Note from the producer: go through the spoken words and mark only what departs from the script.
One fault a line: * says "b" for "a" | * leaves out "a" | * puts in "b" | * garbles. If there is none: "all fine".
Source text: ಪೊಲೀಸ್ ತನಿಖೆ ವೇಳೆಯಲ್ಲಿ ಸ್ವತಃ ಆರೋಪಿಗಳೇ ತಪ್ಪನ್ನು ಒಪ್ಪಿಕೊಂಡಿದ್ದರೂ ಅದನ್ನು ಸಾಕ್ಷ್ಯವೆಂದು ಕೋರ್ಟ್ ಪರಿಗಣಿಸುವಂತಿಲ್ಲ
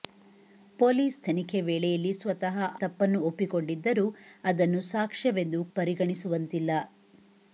* leaves out "ಆರೋಪಿಗಳೇ"
* leaves out "ಕೋರ್ಟ್"